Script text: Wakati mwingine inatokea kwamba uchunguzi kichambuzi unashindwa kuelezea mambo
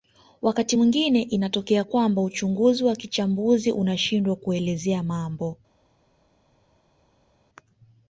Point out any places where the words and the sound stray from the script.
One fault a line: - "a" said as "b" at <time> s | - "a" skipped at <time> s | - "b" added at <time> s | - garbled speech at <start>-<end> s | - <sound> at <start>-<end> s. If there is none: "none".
- "wa" added at 2.8 s